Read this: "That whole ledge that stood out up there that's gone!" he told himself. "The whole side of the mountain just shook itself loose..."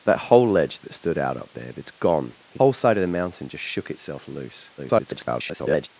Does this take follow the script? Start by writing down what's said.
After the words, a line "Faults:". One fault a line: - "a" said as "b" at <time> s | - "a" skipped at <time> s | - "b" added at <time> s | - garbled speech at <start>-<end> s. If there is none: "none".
"That whole ledge that stood out up there that's gone!" he whole side of the mountain just shook itself loose..." [garbled]
Faults:
- "told himself The" skipped at 2.6 s
- garbled speech at 4.8-5.9 s